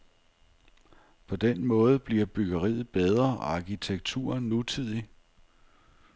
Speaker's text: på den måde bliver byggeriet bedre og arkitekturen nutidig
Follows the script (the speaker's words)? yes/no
yes